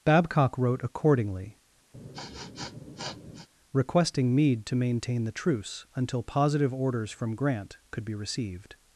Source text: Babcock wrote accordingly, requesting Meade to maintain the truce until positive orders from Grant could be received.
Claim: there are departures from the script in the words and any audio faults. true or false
true